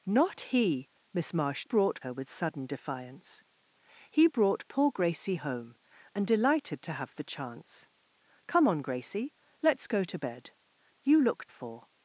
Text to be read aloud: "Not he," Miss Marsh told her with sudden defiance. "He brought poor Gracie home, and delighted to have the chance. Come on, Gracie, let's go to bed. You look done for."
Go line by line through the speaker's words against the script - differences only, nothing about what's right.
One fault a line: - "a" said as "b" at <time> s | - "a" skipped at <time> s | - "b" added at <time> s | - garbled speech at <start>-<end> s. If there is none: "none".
- "told" said as "brought" at 1.6 s
- "done" skipped at 11.5 s